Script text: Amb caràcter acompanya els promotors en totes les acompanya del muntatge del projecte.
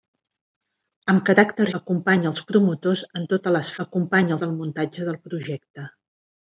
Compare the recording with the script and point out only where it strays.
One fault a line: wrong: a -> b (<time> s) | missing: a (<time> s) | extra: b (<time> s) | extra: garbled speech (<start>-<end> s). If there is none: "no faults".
no faults